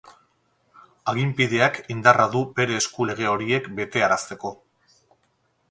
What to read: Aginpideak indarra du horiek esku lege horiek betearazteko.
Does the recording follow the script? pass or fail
fail